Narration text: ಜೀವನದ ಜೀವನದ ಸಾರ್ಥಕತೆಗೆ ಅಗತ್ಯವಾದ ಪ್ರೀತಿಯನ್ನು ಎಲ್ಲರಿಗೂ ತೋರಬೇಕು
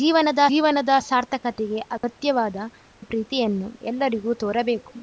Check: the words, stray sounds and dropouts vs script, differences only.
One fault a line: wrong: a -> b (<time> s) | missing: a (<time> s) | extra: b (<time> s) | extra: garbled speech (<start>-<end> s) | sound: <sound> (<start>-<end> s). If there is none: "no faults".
sound: dropout (2.0-2.0 s)